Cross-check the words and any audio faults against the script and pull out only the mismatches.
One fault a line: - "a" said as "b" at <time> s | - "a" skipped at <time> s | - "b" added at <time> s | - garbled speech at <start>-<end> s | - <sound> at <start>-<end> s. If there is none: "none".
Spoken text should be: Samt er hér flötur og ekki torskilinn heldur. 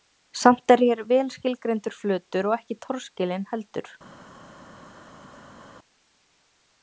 - "vel skilgreindur" added at 1.1 s